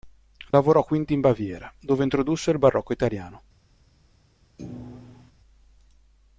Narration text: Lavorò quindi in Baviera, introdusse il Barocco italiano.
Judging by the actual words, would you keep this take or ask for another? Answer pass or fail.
fail